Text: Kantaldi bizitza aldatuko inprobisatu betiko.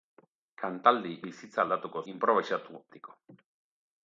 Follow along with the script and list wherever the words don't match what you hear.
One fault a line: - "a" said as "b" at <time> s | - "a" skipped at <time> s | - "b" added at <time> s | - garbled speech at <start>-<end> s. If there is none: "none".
none